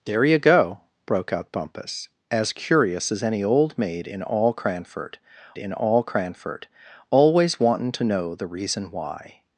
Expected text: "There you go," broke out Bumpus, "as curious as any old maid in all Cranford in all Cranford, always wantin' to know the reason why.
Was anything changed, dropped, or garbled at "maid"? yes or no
no